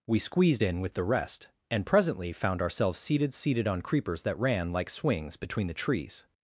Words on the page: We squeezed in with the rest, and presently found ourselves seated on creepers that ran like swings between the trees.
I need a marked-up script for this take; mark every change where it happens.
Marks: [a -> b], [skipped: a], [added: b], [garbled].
We squeezed in with the rest, and presently found ourselves seated [added: seated] on creepers that ran like swings between the trees.